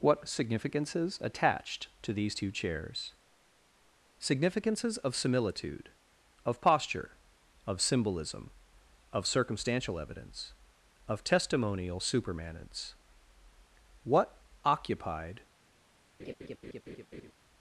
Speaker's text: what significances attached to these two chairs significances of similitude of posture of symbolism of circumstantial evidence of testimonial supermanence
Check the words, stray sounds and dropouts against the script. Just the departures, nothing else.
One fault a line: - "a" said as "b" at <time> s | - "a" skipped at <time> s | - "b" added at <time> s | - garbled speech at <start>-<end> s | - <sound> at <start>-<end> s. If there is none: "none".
- "what occupied" added at 14.0 s
- laugh at 16.2-17.3 s